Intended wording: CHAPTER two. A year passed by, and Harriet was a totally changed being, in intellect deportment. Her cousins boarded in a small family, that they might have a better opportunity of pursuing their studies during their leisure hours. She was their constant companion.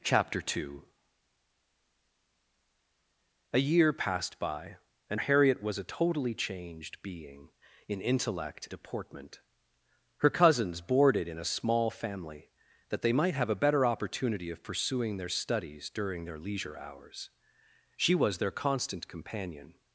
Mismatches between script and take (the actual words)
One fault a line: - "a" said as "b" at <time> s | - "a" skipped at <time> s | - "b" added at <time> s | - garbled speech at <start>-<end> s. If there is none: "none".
none